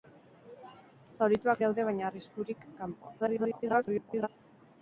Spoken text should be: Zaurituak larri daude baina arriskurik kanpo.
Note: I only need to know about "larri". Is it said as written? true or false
false